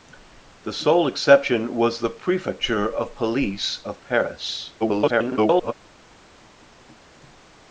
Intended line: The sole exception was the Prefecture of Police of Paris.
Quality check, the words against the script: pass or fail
fail